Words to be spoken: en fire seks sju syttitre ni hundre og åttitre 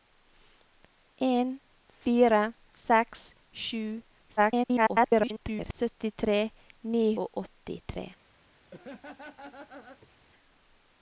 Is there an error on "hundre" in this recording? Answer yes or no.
yes